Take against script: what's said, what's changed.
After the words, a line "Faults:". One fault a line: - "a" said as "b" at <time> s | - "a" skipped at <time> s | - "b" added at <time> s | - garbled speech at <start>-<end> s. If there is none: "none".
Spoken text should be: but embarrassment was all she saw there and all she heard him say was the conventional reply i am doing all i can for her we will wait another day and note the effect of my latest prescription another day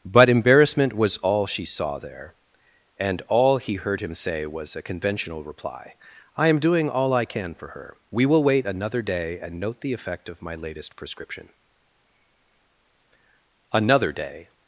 but embarrassment was all she saw there and all he heard him say was a conventional reply i am doing all i can for her we will wait another day and note the effect of my latest prescription another day
Faults:
- "she" said as "he" at 3.6 s
- "the" said as "a" at 4.8 s